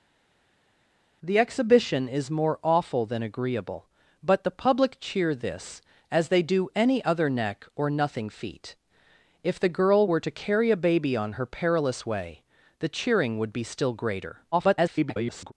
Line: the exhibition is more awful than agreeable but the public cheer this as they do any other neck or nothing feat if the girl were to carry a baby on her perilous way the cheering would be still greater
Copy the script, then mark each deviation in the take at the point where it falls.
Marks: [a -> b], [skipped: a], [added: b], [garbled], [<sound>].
the exhibition is more awful than agreeable but the public cheer this as they do any other neck or nothing feat if the girl were to carry a baby on her perilous way the cheering would be still greater [garbled]